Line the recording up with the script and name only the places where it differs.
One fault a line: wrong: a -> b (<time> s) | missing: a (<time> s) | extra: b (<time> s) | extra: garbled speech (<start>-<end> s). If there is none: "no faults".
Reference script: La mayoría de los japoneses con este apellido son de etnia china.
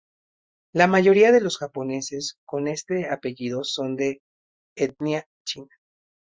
no faults